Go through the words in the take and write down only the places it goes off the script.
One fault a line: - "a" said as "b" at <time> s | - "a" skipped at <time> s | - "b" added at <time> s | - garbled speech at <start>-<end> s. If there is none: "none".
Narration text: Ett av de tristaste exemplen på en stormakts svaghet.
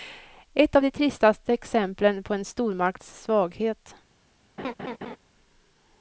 none